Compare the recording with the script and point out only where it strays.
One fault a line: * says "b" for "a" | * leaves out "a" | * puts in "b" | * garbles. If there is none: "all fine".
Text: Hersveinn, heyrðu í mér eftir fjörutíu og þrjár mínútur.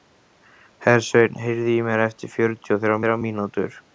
* puts in "þrjár"